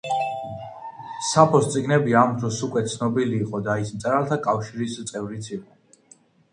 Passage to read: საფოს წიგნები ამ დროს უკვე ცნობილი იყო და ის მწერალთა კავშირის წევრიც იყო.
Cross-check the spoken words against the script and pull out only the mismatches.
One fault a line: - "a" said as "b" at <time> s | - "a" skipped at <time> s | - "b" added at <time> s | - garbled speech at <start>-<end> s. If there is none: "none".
none